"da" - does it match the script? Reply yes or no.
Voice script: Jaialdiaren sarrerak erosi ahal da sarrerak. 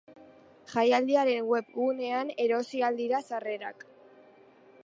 no